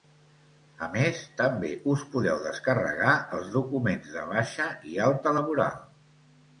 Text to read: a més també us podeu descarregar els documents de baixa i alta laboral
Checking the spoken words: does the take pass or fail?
pass